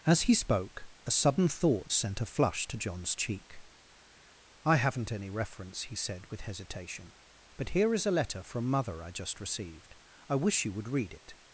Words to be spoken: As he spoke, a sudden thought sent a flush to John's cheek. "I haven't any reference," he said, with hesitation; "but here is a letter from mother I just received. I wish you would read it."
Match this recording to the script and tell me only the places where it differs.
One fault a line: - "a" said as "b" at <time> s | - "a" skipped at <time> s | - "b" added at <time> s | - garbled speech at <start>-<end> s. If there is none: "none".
none